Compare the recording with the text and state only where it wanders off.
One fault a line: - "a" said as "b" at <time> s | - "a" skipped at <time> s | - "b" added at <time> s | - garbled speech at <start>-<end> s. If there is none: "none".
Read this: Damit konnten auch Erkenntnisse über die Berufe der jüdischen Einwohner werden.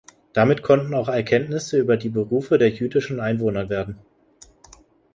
none